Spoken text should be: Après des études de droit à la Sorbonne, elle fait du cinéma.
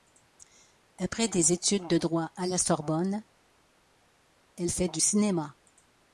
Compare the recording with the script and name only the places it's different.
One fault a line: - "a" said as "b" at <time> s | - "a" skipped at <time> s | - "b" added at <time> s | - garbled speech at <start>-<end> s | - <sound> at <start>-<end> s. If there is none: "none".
none